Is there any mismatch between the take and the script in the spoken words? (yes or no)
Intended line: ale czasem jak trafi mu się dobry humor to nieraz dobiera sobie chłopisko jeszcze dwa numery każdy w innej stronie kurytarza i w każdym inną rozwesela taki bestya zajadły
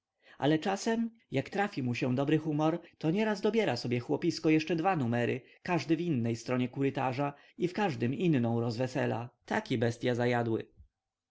no